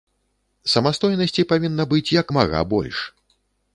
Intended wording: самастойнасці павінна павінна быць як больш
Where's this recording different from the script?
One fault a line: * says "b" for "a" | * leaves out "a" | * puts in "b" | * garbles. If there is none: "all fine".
* leaves out "павінна"
* puts in "мага"